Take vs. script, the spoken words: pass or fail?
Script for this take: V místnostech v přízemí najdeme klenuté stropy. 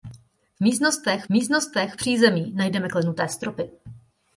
fail